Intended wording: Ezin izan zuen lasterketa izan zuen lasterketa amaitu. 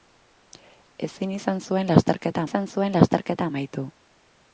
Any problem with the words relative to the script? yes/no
no